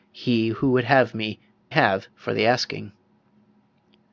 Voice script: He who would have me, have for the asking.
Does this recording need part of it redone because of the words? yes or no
no